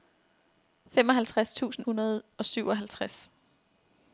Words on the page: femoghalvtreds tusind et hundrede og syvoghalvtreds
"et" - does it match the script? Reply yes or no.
no